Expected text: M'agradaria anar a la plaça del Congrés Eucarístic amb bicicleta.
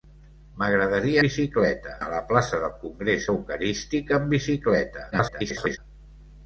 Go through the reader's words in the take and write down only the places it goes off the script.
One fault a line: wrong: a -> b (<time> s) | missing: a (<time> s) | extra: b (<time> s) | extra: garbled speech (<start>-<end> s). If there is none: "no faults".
wrong: anar -> bicicleta (1.3 s)
extra: garbled speech (5.1-5.8 s)